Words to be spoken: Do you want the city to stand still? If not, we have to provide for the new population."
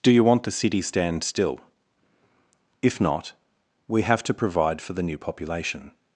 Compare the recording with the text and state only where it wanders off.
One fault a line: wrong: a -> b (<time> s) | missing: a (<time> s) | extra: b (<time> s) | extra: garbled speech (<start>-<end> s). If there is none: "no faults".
missing: to (0.8 s)